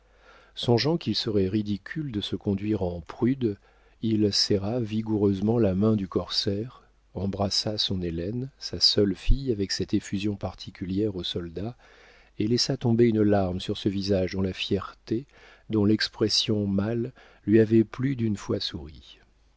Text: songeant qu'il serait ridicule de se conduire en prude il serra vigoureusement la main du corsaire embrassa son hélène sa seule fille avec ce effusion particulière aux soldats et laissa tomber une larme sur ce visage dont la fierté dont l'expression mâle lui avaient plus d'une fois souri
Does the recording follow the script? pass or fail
fail